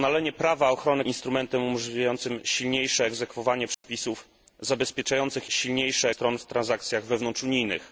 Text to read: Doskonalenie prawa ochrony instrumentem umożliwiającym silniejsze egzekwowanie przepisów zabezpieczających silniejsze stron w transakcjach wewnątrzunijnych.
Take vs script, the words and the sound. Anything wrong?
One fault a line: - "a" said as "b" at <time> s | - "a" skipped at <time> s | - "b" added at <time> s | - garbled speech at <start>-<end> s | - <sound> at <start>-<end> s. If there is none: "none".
- dropout at 3.7-3.8 s